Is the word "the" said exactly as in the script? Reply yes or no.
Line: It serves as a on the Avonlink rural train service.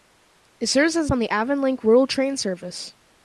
yes